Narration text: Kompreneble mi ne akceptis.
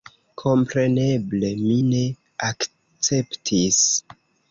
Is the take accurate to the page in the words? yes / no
yes